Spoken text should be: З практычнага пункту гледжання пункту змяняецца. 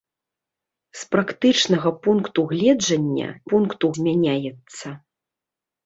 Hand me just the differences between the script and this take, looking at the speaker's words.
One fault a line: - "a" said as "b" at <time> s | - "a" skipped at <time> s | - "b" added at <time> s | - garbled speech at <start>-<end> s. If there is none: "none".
none